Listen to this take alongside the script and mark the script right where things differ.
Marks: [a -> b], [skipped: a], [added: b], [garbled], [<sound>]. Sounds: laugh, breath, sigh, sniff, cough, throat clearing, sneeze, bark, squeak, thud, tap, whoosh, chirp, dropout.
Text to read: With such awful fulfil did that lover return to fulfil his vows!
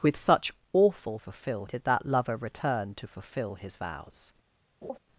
With such awful fulfil did that lover return to fulfil his vows! [laugh]